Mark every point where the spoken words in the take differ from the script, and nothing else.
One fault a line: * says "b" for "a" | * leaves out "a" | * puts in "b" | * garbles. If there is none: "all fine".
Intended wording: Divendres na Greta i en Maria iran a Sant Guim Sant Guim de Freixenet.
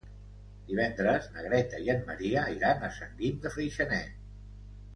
* leaves out "Sant Guim"